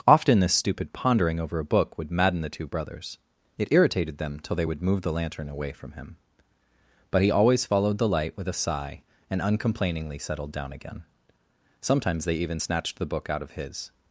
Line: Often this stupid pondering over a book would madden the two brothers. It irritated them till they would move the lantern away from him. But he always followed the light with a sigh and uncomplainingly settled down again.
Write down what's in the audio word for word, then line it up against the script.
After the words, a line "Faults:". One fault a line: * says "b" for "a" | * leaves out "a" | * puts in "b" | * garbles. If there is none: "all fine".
Often this stupid pondering over a book would madden the two brothers. It irritated them till they would move the lantern away from him. But he always followed the light with a sigh and uncomplainingly settled down again. Sometimes they even snatched the book out of his
Faults:
* puts in "Sometimes they even snatched the book out of his"